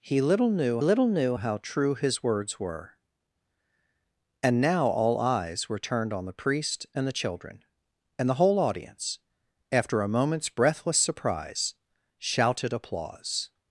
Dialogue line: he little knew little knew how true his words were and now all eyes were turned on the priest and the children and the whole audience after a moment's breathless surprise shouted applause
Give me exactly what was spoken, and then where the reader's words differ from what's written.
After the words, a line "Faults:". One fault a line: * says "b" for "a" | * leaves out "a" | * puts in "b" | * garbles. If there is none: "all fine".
he little knew little knew how true his words were and now all eyes were turned on the priest and the children and the whole audience after a moment's breathless surprise shouted applause
Faults:
all fine